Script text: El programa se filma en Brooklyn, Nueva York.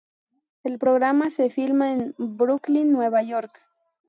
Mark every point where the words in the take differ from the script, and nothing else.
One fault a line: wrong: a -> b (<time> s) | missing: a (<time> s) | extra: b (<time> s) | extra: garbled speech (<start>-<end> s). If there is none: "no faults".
no faults